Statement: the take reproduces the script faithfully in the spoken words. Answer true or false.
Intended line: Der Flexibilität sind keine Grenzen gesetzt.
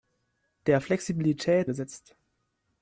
false